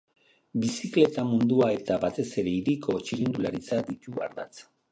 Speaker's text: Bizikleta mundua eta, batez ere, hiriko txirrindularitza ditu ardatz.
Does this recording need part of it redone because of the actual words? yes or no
no